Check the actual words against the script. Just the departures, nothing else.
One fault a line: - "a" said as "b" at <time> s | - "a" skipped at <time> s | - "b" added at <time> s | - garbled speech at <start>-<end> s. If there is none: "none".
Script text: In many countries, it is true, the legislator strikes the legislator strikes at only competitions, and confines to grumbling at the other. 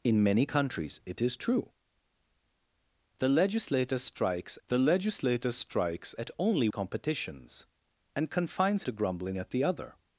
none